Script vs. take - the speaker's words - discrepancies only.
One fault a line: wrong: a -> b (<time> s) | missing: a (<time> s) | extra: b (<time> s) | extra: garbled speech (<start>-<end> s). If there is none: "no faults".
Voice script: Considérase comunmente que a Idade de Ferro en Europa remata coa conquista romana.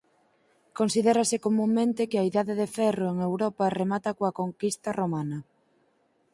no faults